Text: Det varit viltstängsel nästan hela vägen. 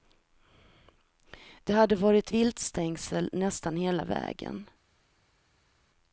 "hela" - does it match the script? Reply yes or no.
yes